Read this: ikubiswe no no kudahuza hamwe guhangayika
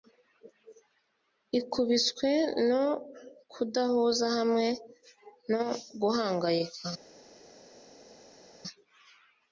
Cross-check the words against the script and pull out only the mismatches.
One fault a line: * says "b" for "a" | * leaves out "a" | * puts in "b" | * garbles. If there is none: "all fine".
* leaves out "no"
* puts in "no"